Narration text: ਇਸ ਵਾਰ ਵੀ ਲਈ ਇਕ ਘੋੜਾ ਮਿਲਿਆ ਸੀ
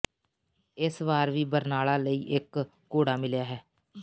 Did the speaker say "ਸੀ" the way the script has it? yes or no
no